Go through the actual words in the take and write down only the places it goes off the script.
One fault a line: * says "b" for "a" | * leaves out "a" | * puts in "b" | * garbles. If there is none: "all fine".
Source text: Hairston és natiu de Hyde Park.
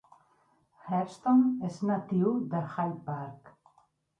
all fine